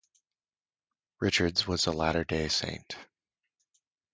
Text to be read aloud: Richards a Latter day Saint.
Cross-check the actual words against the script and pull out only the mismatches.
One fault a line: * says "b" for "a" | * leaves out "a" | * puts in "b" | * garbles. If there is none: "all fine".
* puts in "was"